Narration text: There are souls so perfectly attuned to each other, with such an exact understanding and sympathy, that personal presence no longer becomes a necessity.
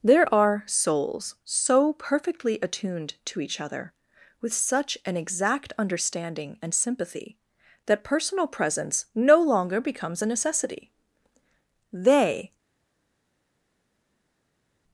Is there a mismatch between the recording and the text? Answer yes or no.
yes